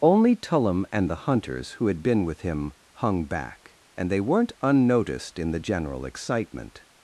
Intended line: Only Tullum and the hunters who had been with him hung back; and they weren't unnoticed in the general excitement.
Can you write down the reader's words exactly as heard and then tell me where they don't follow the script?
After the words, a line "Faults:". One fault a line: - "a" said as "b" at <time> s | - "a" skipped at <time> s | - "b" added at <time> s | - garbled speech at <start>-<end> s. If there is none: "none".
Only Tullum and the hunters who had been with him hung back; and they weren't unnoticed in the general excitement.
Faults:
none